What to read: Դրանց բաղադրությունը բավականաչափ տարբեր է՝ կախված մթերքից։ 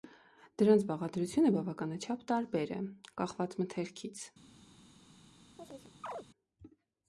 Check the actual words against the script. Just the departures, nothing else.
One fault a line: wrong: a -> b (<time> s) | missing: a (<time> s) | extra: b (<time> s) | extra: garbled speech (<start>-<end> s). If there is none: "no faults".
no faults